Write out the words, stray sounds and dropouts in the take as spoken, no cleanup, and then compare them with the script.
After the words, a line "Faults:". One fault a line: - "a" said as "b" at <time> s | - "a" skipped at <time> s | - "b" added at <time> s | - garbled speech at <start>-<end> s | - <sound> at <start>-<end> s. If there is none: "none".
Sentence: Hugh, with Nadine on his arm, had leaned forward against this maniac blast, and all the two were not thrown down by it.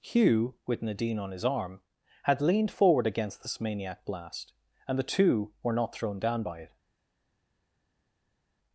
Hugh, with Nadine on his arm, had leaned forward against this maniac blast, and the two were not thrown down by it.
Faults:
- "all" skipped at 5.0 s